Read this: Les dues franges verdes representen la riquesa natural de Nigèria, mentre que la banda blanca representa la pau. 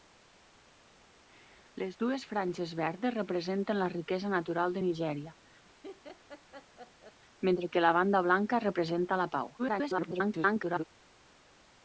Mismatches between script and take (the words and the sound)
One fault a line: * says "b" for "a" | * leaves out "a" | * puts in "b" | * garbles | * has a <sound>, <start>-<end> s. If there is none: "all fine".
* has a laugh, 5.6-7.2 s
* garbles